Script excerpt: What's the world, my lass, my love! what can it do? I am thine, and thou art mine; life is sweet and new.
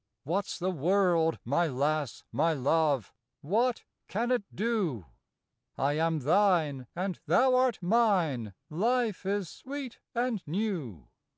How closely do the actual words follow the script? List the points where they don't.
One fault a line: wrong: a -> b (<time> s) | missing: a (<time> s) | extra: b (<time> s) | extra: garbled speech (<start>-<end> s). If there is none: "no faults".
no faults